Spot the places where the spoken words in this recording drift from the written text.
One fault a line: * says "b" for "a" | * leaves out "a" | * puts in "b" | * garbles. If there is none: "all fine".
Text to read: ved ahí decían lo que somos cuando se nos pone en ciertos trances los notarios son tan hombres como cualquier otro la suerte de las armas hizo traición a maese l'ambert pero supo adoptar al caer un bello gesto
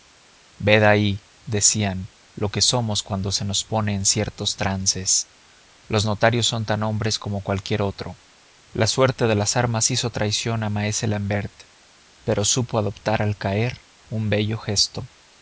all fine